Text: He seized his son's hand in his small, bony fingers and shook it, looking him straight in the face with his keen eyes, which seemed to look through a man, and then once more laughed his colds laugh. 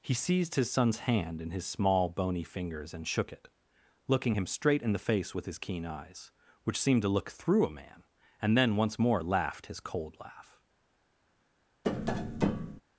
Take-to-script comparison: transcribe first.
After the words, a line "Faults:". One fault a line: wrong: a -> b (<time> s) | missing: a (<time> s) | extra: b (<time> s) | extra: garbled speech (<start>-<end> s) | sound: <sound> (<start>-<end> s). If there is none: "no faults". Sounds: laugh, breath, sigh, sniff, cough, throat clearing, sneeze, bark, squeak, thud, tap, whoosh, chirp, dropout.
He seized his son's hand in his small, bony fingers and shook it, looking him straight in the face with his keen eyes, which seemed to look through a man, and then once more laughed his cold laugh.
Faults:
wrong: colds -> cold (9.8 s)
sound: tap (11.8-12.8 s)